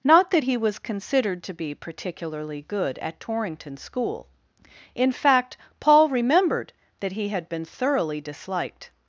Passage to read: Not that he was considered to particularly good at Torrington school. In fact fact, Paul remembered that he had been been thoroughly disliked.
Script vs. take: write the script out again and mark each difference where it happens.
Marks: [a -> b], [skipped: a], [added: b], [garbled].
Not that he was considered to [added: be] particularly good at Torrington school. In fact [skipped: fact,] Paul remembered that he had been [skipped: been] thoroughly disliked.